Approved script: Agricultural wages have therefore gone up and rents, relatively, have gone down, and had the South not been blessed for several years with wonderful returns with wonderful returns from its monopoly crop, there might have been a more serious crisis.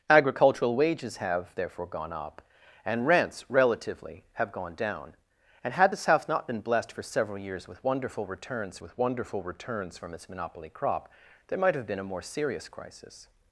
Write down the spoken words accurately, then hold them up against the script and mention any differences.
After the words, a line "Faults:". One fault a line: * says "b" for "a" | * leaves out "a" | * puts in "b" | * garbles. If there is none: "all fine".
Agricultural wages have therefore gone up and rents, relatively, have gone down, and had the South not been blessed for several years with wonderful returns with wonderful returns from its monopoly crop, there might have been a more serious crisis.
Faults:
all fine